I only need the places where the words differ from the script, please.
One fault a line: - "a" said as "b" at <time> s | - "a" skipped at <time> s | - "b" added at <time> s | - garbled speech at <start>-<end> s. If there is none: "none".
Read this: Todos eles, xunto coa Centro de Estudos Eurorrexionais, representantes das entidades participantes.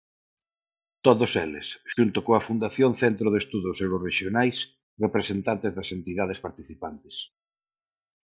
- "Fundación" added at 2.5 s